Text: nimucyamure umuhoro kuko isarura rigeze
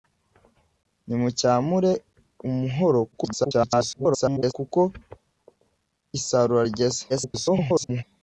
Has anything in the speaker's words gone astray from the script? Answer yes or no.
yes